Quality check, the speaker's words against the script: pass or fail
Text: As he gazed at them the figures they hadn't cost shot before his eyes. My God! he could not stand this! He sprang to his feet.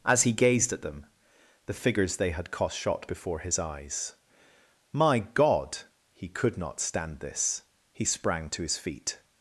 fail